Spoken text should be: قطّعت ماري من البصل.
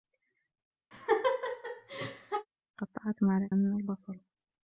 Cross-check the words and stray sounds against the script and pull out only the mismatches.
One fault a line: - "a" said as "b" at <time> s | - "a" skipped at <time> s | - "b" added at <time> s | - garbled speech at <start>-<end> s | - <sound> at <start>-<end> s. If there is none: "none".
- laugh at 0.9-2.5 s